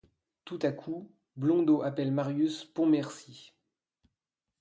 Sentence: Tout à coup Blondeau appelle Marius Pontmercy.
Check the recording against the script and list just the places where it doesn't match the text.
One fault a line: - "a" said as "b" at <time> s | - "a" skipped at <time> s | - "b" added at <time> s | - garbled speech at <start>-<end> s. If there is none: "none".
none